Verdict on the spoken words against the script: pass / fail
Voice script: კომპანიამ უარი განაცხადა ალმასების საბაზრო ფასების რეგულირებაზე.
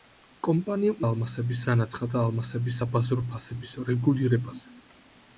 fail